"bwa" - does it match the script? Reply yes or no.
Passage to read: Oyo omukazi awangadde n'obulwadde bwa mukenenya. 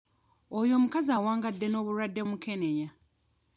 no